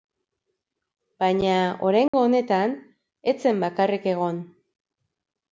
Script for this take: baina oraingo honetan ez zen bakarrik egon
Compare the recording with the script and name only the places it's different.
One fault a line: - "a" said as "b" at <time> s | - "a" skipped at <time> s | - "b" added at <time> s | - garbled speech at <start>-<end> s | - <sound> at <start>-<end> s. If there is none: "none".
- dropout at 2.1-2.1 s